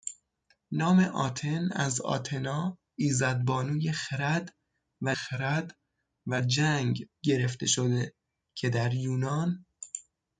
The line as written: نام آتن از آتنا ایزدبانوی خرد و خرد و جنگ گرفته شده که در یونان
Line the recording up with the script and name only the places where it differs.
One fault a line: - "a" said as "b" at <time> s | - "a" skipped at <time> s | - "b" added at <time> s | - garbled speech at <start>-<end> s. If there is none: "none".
none